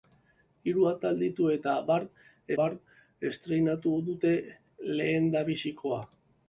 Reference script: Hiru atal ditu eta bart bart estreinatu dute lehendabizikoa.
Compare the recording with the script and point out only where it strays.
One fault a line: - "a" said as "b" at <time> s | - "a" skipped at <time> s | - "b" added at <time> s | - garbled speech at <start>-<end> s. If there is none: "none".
none